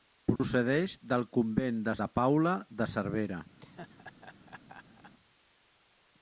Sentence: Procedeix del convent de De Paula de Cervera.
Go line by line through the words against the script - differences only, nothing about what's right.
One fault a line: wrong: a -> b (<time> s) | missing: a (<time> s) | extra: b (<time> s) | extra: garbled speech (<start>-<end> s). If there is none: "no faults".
no faults